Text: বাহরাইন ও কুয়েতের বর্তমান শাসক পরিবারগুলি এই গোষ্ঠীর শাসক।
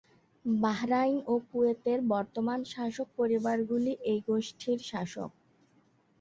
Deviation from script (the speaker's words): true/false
false